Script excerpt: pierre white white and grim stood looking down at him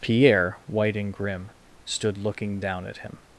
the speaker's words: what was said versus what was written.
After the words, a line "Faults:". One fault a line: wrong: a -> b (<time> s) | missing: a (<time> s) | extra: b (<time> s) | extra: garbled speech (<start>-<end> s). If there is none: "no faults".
pierre white and grim stood looking down at him
Faults:
missing: white (0.9 s)